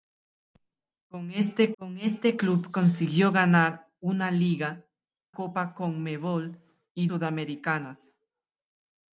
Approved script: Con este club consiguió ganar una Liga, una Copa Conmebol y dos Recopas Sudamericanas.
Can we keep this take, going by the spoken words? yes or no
no